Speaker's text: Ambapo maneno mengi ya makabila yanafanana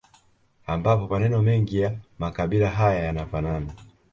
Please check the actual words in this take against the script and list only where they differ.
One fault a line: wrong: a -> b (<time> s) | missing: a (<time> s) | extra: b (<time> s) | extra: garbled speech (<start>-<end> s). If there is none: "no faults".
extra: haya (2.7 s)